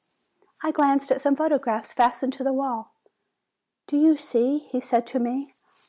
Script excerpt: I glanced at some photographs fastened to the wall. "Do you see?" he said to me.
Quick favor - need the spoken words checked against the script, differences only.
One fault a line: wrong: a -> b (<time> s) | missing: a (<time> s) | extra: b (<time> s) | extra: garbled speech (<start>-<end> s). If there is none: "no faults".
no faults